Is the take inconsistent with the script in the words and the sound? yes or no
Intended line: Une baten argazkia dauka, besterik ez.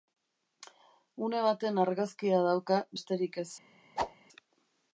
yes